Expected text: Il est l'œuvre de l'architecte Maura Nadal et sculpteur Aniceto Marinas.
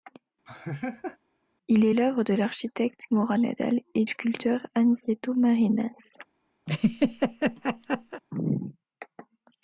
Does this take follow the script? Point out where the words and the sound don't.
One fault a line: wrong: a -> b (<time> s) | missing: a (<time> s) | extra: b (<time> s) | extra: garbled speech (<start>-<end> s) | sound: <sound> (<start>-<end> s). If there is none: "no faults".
sound: laugh (0.5-1.2 s)
sound: laugh (6.7-8.2 s)